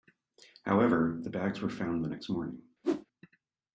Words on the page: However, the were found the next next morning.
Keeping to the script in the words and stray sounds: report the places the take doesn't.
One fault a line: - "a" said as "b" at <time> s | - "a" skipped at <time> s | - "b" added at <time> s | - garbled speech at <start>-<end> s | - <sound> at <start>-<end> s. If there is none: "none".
- "bags" added at 1.3 s
- "next" skipped at 2.3 s
- whoosh at 2.8-3.1 s